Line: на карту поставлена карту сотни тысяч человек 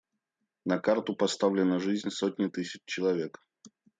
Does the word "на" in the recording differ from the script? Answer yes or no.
no